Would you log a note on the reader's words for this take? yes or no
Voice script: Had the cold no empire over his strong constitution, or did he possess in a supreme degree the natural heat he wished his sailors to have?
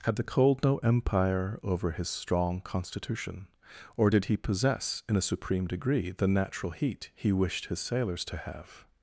no